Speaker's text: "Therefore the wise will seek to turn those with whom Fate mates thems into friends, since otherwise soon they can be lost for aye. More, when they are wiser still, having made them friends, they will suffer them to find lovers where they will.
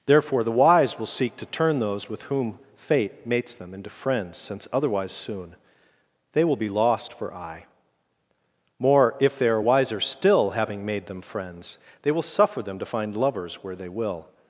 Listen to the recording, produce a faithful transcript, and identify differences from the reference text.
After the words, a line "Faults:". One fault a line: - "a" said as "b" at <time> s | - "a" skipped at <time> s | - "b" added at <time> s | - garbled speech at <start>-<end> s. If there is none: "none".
"Therefore the wise will seek to turn those with whom Fate mates them into friends, since otherwise soon they will be lost for aye. More, if they are wiser still, having made them friends, they will suffer them to find lovers where they will.
Faults:
- "thems" said as "them" at 3.5 s
- "can" said as "will" at 6.5 s
- "when" said as "if" at 9.2 s